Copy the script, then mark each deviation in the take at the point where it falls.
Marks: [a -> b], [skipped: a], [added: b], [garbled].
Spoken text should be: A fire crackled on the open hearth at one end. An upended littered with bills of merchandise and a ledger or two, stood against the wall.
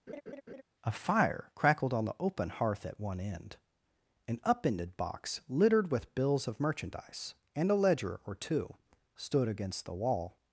A fire crackled on the open hearth at one end. An upended [added: box] littered with bills of merchandise and a ledger or two, stood against the wall.